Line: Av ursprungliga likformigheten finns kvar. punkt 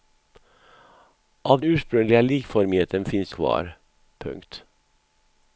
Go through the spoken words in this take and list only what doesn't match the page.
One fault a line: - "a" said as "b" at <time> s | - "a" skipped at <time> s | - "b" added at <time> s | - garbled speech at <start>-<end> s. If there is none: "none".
none